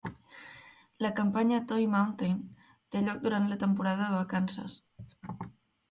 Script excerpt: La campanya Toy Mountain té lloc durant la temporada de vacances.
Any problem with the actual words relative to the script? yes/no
no